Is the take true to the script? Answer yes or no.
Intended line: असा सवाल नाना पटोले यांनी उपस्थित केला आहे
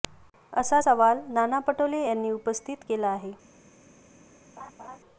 yes